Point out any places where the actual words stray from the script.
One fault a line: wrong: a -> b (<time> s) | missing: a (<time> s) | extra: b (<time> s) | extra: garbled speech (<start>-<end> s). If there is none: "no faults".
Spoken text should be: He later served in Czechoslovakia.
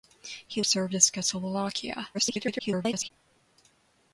missing: later (0.6 s)
extra: garbled speech (2.1-3.1 s)